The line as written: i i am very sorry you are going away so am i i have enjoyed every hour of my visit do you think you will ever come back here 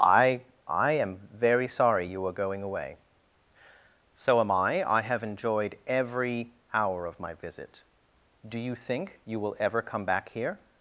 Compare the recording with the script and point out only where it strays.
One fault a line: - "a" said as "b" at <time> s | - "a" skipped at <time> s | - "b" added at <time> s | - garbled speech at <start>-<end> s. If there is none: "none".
none